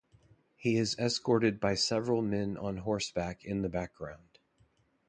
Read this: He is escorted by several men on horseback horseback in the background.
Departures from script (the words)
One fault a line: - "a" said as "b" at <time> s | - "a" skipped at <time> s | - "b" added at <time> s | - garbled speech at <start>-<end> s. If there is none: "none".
- "horseback" skipped at 3.4 s